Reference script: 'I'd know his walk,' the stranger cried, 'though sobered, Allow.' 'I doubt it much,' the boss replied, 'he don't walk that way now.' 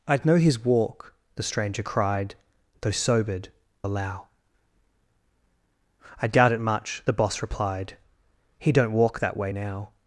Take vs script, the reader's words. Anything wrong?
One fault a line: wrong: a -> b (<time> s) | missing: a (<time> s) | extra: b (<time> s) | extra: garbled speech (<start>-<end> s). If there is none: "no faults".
no faults